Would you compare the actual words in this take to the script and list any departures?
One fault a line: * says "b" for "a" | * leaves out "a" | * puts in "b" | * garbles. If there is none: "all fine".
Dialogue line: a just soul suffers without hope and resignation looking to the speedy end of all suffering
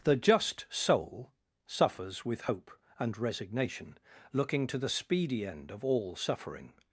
* says "the" for "a"
* says "with" for "without"